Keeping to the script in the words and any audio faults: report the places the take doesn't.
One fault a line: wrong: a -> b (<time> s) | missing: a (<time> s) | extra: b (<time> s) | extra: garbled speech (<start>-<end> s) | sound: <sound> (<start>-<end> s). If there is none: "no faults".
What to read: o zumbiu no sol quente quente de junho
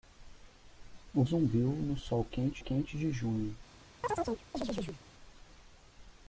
sound: chirp (4.0-5.0 s)